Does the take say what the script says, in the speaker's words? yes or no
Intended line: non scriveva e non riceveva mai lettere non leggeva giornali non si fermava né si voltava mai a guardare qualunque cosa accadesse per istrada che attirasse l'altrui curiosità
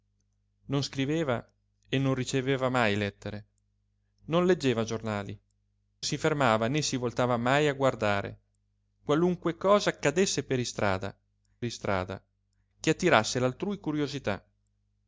no